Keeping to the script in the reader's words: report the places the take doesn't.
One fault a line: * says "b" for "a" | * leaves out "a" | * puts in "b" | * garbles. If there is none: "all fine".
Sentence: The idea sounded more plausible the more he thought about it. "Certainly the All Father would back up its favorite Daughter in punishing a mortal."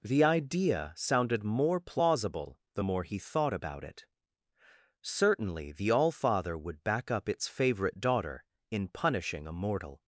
all fine